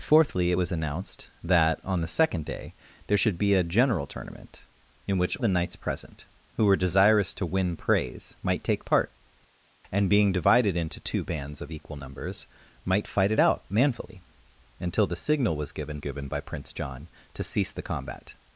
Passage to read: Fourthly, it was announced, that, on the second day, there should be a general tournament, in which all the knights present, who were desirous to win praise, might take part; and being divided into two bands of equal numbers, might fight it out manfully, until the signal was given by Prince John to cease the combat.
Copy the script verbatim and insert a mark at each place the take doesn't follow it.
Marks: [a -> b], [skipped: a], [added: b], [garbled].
Fourthly, it was announced, that, on the second day, there should be a general tournament, in which [skipped: all] the knights present, who were desirous to win praise, might take part; and being divided into two bands of equal numbers, might fight it out manfully, until the signal was given [added: given] by Prince John to cease the combat.